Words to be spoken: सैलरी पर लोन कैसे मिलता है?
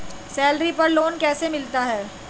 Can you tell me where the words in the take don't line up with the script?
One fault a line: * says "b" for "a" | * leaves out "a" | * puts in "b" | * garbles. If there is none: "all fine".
all fine